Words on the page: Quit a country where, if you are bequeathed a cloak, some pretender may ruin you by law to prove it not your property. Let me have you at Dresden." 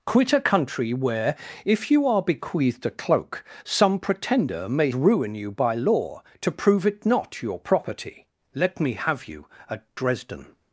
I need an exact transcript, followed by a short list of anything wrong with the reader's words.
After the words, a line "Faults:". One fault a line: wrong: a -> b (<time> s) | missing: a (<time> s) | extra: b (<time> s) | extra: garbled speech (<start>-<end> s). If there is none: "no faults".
Quit a country where, if you are bequeathed a cloak, some pretender may ruin you by law to prove it not your property. Let me have you at Dresden."
Faults:
no faults